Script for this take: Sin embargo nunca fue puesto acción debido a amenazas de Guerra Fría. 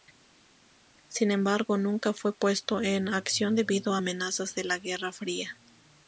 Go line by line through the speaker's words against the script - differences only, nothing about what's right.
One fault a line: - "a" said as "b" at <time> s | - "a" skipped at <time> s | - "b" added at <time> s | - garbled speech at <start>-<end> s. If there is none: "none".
- "en" added at 2.8 s
- "la" added at 4.6 s